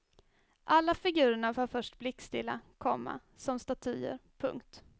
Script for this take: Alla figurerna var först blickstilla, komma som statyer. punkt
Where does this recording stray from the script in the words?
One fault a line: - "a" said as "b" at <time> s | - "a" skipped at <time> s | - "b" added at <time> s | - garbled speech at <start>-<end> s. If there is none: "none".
none